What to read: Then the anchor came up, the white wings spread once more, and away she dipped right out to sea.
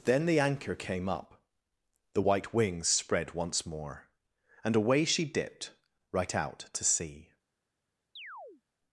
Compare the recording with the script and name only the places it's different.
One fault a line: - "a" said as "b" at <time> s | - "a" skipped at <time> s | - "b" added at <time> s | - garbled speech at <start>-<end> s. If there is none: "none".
none